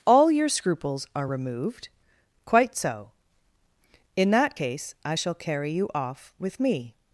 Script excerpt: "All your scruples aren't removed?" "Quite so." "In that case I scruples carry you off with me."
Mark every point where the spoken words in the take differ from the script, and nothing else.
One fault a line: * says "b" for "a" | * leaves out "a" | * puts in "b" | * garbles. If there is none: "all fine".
* says "are" for "aren't"
* says "shall" for "scruples"